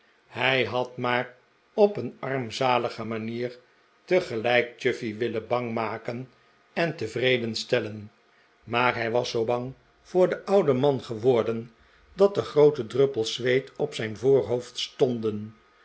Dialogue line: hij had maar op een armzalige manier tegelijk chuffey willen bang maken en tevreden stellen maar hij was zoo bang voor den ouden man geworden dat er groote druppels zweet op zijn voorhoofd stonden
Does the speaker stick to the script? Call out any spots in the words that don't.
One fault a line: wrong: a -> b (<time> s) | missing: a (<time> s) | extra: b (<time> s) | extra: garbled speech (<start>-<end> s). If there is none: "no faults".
no faults